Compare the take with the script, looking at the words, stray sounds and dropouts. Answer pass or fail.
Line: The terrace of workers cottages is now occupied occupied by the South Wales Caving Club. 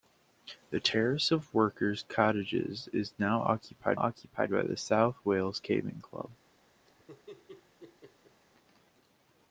fail